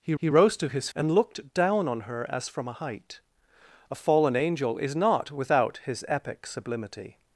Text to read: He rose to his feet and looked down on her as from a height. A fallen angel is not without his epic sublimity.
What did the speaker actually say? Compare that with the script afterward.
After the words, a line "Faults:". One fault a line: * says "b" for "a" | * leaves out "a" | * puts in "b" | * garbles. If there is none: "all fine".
He he rose to his and looked down on her as from a height. A fallen angel is not without his epic sublimity.
Faults:
* puts in "he"
* leaves out "feet"